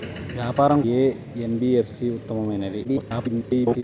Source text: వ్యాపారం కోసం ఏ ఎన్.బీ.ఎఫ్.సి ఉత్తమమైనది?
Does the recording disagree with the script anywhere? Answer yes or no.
yes